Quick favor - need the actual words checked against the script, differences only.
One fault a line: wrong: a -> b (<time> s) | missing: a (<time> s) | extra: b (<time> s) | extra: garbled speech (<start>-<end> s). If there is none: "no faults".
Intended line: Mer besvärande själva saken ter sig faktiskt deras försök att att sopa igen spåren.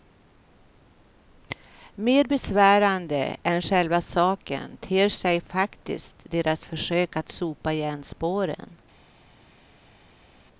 extra: än (3.4 s)
missing: att (7.3 s)